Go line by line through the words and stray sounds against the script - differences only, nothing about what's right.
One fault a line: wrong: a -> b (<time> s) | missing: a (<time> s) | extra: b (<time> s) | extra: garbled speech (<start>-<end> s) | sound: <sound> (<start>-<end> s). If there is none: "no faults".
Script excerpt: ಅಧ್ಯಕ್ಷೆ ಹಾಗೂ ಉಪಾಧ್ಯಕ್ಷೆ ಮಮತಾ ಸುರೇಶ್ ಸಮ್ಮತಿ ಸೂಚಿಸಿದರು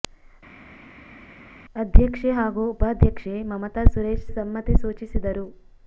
no faults